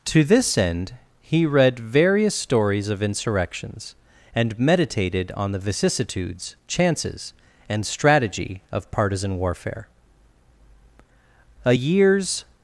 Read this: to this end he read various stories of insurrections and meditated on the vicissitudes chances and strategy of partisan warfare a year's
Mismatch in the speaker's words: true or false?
false